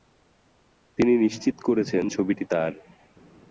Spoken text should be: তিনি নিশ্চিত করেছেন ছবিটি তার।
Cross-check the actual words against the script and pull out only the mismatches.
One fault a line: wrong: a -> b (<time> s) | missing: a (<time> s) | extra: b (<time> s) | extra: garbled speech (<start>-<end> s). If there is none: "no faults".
no faults